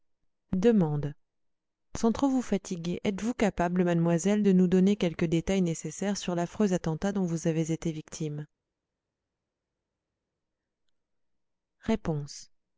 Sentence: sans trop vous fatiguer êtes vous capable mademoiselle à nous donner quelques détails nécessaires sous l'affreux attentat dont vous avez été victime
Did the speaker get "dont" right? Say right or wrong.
right